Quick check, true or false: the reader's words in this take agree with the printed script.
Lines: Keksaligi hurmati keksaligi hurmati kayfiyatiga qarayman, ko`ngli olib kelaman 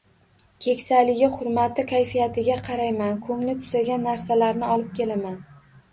false